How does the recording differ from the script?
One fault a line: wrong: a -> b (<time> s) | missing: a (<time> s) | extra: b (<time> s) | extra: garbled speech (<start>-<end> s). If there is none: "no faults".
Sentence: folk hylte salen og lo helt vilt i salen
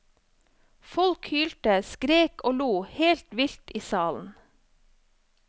wrong: salen -> skrek (1.9 s)